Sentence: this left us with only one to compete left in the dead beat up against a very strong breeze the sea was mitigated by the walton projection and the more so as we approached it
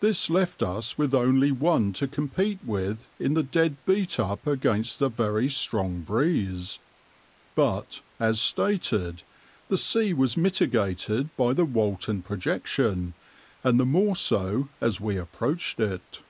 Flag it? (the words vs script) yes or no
yes